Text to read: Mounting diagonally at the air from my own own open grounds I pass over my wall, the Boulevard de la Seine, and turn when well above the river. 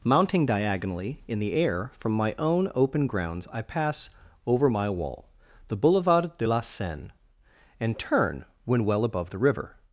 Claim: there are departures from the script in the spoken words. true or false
true